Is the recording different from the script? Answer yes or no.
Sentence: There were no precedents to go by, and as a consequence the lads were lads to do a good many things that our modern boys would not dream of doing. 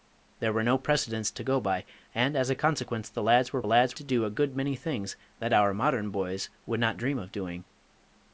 no